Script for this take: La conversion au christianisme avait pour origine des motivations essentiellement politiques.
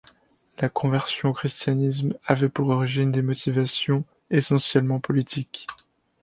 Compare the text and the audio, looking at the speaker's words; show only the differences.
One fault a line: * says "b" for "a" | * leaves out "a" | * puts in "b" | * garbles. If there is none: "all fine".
all fine